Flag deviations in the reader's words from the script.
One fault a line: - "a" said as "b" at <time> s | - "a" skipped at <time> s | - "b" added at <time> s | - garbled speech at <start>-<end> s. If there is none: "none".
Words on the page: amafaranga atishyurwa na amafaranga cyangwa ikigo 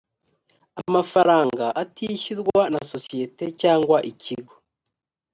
- "amafaranga" said as "sosiyete" at 2.9 s